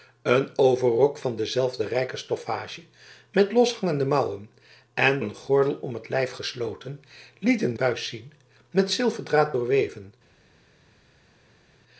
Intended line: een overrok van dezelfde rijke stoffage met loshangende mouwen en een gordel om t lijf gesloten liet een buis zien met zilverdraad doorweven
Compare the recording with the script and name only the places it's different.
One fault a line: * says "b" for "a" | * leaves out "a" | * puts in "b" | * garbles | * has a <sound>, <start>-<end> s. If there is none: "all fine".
all fine